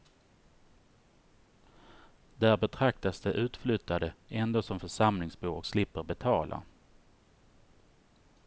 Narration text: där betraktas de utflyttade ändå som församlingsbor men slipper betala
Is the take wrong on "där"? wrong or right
right